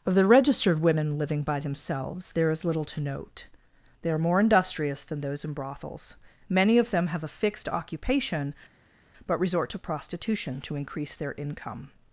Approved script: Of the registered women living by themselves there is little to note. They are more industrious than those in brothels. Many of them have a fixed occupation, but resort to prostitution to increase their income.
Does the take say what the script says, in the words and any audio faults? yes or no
yes